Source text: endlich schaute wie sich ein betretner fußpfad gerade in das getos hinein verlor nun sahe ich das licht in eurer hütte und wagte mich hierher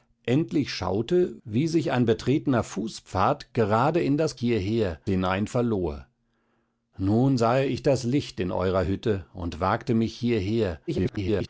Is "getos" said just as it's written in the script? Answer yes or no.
no